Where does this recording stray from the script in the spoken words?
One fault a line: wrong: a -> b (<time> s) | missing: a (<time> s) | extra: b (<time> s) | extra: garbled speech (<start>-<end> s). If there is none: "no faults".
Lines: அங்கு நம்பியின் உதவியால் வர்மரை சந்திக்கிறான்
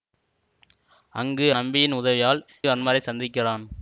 no faults